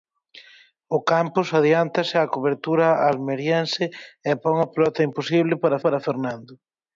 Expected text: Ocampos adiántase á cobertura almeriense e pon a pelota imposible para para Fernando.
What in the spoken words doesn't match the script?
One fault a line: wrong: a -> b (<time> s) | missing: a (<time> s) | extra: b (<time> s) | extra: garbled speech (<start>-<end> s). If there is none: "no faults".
no faults